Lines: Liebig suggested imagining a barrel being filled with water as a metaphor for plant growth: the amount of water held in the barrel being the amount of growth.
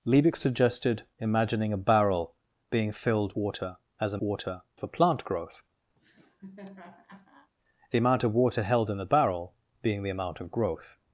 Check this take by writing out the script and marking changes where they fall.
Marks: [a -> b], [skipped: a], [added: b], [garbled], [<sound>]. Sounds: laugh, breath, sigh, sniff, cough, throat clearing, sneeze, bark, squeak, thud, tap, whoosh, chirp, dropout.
Liebig suggested imagining a barrel being filled [skipped: with] water as a [metaphor -> water] for plant growth: [laugh] the amount of water held in the barrel being the amount of growth.